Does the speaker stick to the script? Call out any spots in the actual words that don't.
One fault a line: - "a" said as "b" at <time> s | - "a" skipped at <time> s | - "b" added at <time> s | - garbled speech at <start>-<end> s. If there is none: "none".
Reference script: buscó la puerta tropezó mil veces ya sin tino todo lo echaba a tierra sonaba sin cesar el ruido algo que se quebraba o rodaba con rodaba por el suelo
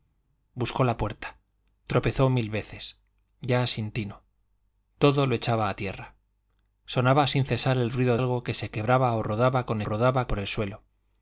none